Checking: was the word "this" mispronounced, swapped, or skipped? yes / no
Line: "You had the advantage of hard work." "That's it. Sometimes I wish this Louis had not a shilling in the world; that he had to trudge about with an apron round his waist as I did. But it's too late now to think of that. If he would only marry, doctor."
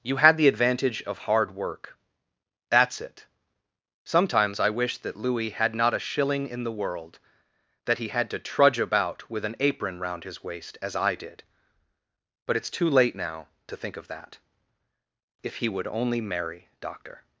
yes